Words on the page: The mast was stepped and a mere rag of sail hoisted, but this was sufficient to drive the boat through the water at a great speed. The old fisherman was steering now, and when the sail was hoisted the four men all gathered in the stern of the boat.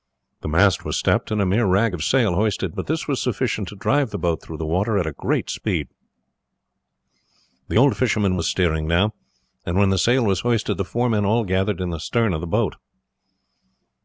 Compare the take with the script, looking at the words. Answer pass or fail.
pass